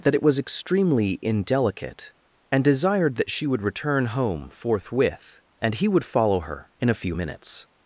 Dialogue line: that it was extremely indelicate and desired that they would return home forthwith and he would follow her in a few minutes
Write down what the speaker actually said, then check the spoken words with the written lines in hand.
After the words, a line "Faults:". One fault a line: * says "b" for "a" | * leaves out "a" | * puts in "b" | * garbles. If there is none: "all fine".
that it was extremely indelicate and desired that she would return home forthwith and he would follow her in a few minutes
Faults:
* says "she" for "they"